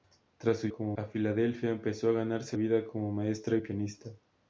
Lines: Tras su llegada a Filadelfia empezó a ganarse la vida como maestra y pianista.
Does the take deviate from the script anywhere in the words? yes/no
yes